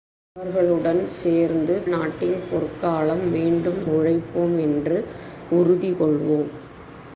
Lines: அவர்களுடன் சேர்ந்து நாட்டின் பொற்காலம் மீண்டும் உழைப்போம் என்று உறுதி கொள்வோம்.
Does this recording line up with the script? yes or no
yes